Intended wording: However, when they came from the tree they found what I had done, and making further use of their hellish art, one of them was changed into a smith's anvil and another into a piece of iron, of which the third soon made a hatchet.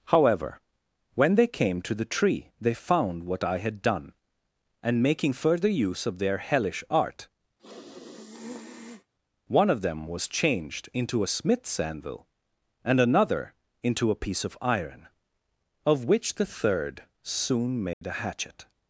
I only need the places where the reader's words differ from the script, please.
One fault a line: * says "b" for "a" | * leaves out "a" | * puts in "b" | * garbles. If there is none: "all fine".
* says "to" for "from"